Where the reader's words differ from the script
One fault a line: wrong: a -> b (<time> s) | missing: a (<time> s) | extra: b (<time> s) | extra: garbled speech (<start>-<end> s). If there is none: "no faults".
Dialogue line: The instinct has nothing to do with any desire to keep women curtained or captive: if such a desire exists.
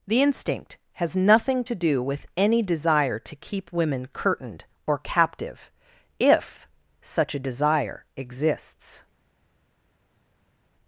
no faults